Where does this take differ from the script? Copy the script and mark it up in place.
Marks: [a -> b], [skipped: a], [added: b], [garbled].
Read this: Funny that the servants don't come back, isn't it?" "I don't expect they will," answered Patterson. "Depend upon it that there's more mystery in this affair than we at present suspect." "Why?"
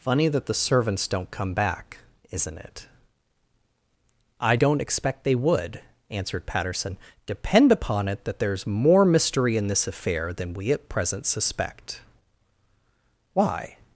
Funny that the servants don't come back, isn't it?" "I don't expect they [will," -> would] answered Patterson. "Depend upon it that there's more mystery in this affair than we at present suspect." "Why?"